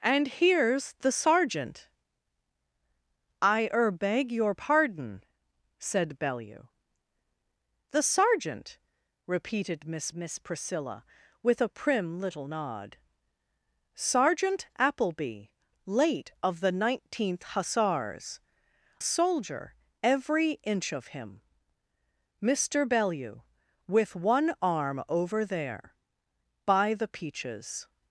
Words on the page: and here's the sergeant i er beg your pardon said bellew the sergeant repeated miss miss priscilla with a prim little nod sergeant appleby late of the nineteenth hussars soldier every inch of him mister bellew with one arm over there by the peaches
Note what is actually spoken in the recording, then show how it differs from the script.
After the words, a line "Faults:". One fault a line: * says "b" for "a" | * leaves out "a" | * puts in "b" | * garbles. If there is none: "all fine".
and here's the sergeant i er beg your pardon said bellew the sergeant repeated miss miss priscilla with a prim little nod sergeant appleby late of the nineteenth hussars soldier every inch of him mister bellew with one arm over there by the peaches
Faults:
all fine